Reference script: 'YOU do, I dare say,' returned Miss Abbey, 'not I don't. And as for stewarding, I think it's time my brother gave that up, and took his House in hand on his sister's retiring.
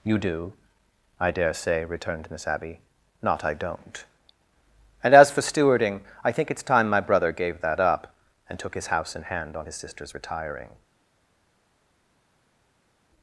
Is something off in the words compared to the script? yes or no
no